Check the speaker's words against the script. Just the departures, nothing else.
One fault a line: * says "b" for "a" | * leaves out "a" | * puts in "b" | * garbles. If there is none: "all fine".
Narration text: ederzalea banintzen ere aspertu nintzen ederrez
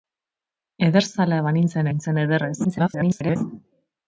* leaves out "ere aspertu"
* garbles